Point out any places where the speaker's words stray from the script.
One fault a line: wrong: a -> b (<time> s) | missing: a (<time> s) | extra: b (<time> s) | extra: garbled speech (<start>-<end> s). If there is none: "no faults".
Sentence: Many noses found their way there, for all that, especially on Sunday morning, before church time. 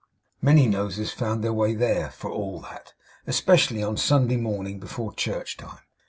no faults